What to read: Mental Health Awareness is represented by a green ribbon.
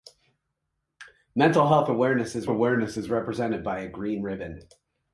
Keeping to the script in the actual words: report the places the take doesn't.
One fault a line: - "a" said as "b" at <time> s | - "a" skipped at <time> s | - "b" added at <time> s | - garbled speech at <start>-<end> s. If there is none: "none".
- "Awareness is" added at 2.5 s